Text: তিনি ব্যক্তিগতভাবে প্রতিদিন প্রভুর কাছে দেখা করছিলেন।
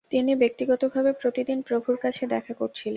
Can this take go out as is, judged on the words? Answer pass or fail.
pass